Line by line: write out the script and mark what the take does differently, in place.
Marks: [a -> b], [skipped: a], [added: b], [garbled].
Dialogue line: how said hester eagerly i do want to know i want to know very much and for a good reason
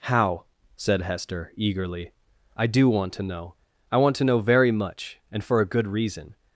how said hester eagerly i do want to know i want to know very much and for a good reason